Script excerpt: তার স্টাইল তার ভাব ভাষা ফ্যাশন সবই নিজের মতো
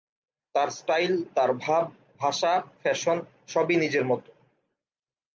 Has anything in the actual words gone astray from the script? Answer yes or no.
no